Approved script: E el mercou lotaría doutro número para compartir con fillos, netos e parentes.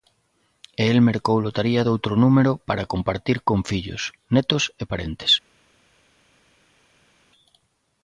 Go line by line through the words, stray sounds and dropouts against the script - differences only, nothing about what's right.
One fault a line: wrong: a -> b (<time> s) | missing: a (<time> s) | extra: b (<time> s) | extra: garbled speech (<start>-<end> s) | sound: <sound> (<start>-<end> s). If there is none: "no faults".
no faults